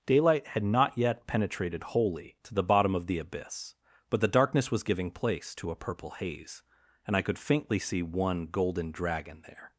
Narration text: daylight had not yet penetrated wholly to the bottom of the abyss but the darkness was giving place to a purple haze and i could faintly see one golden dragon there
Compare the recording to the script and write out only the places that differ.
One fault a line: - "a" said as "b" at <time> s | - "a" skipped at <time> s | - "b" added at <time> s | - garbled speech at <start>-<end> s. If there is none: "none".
none